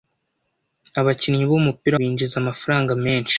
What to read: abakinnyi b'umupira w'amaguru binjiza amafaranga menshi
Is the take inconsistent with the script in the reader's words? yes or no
yes